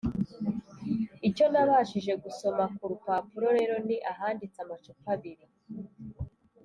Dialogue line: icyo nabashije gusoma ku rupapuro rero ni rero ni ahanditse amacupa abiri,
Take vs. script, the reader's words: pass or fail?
fail